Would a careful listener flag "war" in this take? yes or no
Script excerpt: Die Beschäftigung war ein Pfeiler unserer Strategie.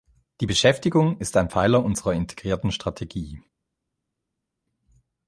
yes